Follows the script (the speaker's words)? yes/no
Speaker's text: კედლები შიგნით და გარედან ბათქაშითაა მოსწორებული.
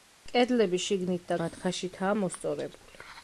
no